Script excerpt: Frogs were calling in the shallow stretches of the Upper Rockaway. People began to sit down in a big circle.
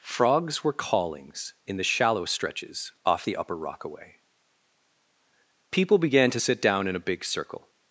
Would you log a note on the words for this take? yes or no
yes